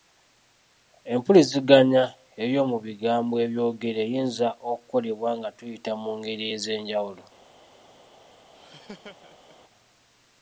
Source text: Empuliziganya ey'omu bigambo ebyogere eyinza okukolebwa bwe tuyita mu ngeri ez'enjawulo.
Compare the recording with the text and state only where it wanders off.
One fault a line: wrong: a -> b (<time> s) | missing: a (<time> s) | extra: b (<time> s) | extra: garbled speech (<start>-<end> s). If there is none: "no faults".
wrong: bwe -> nga (5.4 s)